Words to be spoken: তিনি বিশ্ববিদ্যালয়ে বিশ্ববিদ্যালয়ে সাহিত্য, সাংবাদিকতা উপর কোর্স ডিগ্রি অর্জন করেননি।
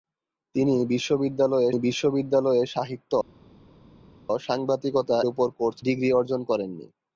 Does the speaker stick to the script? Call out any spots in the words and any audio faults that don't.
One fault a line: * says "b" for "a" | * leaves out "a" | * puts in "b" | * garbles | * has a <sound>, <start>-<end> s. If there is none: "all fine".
all fine